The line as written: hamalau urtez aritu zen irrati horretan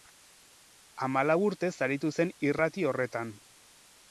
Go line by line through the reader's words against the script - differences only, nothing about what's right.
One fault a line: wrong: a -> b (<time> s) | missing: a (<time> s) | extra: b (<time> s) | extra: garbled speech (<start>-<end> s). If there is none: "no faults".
no faults